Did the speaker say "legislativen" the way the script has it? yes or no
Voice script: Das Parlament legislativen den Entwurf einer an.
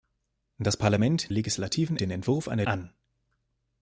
yes